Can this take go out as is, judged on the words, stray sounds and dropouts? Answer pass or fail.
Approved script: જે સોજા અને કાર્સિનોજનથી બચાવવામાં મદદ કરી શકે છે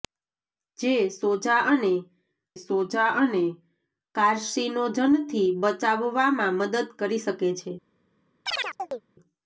fail